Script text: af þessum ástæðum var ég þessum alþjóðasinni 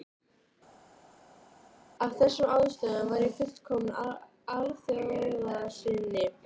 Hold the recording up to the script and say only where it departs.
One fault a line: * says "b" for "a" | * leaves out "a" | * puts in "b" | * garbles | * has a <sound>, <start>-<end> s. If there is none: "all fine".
* says "fullkominn" for "þessum"